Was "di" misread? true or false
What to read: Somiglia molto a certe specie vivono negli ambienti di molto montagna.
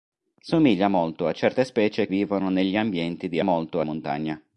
false